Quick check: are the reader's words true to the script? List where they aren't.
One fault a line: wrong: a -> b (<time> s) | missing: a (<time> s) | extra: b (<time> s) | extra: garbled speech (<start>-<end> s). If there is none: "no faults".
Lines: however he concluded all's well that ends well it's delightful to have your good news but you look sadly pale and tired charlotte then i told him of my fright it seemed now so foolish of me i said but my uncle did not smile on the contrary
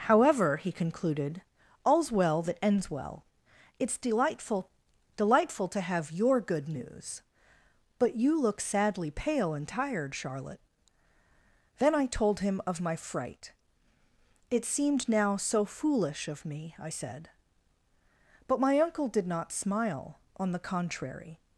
extra: delightful (5.2 s)